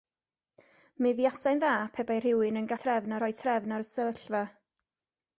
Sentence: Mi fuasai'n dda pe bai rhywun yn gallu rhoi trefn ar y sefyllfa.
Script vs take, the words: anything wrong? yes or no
yes